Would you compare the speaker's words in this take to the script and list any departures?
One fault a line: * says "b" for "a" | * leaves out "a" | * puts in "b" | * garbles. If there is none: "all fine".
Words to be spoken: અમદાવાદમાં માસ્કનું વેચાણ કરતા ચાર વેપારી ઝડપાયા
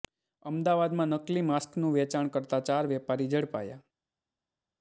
* puts in "નકલી"